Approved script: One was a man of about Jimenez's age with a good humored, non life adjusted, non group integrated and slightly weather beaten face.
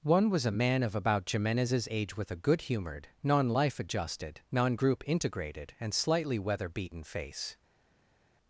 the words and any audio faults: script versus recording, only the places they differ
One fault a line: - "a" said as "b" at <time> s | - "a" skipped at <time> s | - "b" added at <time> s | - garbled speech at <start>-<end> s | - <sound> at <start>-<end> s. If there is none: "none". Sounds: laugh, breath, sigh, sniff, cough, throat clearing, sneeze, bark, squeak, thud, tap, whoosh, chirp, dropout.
none